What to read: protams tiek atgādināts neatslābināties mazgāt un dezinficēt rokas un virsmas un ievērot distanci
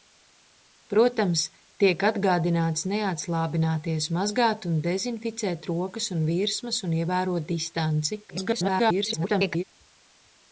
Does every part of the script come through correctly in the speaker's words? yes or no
no